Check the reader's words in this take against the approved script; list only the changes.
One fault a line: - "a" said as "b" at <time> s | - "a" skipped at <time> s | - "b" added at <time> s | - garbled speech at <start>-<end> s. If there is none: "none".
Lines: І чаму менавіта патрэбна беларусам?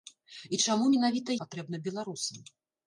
none